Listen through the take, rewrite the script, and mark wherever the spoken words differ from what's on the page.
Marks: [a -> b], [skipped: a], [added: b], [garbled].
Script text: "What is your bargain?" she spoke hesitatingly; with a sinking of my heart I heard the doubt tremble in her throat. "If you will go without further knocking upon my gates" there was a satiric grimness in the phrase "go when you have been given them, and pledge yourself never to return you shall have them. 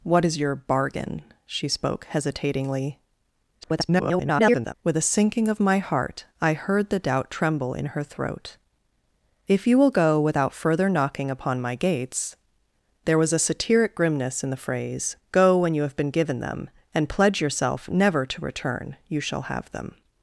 "What is your bargain?" she spoke hesitatingly; [garbled] with a sinking of my heart I heard the doubt tremble in her throat. "If you will go without further knocking upon my gates" there was a satiric grimness in the phrase "go when you have been given them, and pledge yourself never to return you shall have them.